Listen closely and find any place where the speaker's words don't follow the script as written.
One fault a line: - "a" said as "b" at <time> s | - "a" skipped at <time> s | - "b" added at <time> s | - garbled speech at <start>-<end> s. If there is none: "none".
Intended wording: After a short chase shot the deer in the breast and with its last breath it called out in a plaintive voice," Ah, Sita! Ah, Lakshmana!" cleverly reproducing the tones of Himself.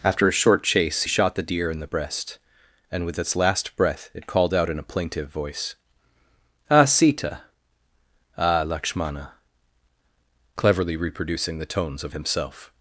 none